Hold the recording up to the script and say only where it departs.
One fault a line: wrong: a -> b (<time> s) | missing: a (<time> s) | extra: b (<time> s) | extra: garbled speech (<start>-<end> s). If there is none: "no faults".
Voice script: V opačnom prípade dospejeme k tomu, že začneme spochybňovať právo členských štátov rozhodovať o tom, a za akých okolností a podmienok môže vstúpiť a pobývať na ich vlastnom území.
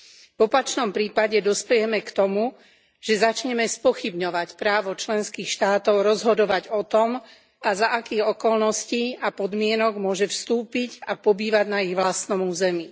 no faults